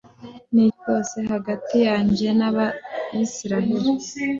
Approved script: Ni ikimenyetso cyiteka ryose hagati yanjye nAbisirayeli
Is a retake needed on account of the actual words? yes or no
yes